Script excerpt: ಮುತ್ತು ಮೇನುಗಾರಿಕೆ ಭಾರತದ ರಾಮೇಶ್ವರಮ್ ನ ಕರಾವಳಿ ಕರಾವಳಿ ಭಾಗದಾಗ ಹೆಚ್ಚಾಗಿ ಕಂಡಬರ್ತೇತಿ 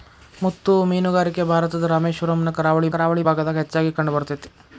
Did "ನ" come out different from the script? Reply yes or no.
no